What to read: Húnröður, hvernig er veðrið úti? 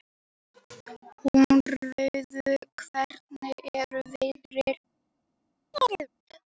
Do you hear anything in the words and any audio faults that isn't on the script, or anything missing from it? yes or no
yes